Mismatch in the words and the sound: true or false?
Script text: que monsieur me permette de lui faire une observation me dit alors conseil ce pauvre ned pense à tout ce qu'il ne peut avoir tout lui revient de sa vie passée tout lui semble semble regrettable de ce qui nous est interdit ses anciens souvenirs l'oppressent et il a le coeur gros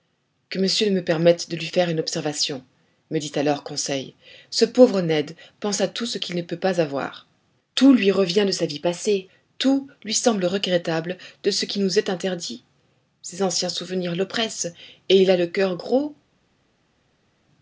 true